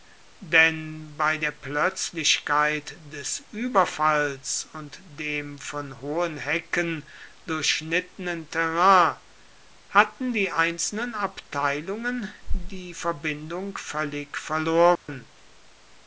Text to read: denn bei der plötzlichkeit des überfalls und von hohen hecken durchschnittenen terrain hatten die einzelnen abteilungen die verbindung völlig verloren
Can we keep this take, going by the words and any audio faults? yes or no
no